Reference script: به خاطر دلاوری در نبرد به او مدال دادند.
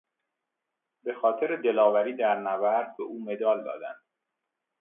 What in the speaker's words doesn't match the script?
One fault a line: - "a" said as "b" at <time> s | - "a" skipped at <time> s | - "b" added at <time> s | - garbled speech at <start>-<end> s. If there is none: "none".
none